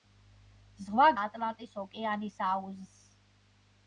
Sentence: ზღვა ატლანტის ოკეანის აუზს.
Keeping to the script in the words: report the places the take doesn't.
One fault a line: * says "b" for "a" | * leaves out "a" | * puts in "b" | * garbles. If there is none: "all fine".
all fine